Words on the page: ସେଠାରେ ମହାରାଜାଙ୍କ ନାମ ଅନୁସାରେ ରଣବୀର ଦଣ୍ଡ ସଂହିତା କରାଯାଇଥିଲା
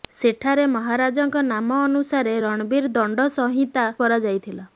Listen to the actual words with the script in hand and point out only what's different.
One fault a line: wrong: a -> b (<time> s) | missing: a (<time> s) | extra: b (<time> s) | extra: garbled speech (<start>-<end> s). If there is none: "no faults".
no faults